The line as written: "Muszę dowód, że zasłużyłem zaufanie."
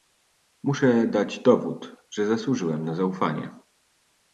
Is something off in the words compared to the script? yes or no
yes